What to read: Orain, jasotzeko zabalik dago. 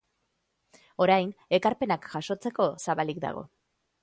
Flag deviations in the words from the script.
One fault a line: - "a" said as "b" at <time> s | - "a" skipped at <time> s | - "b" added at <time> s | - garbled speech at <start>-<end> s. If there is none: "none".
- "ekarpenak" added at 1.6 s